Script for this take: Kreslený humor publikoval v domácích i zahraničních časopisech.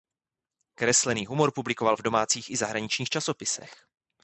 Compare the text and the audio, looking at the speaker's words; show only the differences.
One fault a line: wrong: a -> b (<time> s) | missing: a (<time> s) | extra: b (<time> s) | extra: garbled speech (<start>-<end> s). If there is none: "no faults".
no faults